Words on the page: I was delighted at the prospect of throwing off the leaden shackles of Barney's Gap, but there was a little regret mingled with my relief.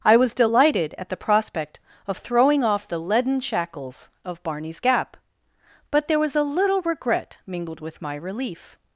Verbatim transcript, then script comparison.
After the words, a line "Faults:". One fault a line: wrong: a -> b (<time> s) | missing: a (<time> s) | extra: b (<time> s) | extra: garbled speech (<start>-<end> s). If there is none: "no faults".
I was delighted at the prospect of throwing off the leaden shackles of Barney's Gap, but there was a little regret mingled with my relief.
Faults:
no faults